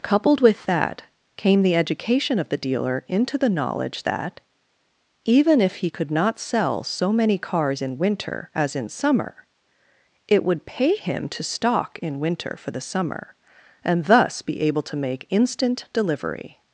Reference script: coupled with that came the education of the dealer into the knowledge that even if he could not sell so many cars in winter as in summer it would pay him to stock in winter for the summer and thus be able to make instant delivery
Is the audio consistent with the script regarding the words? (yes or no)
yes